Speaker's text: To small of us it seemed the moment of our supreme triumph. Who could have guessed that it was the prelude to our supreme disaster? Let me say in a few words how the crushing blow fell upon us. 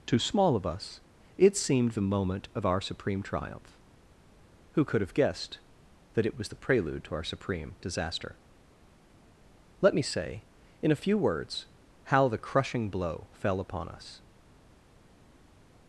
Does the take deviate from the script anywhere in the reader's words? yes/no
no